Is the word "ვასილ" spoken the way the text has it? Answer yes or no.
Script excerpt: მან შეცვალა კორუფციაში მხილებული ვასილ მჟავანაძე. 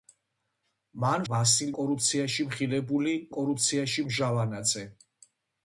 no